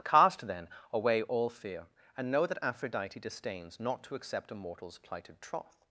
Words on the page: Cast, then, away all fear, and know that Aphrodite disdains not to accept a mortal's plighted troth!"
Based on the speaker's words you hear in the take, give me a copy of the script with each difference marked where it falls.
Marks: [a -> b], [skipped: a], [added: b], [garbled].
Cast, then, away all fear, and know that Aphrodite disdains not to accept a mortal's plighted troth!"